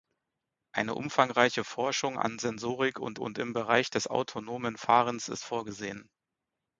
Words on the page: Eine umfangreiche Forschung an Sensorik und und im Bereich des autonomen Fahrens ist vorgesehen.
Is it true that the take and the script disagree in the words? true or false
false